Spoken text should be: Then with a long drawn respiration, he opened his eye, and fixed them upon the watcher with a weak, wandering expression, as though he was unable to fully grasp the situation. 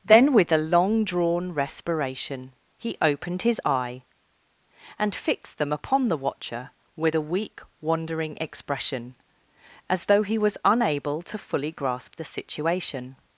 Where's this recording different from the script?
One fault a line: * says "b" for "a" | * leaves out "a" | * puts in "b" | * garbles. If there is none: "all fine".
all fine